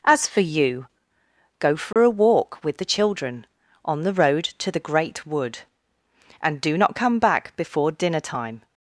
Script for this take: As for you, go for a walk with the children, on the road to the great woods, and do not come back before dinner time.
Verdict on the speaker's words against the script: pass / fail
fail